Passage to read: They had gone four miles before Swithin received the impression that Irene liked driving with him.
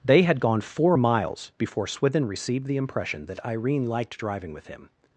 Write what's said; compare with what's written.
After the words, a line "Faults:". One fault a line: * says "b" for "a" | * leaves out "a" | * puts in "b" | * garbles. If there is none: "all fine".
They had gone four miles before Swithin received the impression that Irene liked driving with him.
Faults:
all fine